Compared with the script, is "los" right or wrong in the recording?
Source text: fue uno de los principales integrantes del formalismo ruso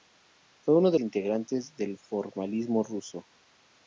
wrong